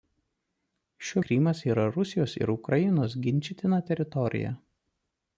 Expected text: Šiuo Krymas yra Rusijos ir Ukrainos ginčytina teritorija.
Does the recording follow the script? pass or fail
pass